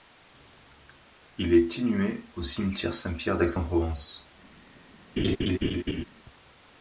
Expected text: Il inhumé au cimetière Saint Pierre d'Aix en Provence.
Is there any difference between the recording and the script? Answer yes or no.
yes